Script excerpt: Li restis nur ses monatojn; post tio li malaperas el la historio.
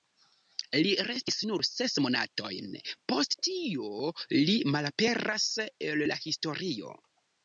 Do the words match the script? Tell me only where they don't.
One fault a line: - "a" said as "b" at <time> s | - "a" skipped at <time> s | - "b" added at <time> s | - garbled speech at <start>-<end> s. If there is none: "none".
none